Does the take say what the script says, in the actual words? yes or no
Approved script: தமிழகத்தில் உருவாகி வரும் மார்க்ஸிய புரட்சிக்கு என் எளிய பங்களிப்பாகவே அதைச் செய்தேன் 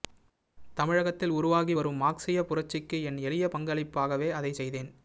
yes